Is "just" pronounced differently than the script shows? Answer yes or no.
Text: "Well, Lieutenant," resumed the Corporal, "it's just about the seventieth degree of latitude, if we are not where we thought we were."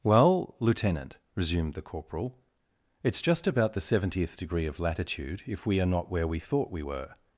no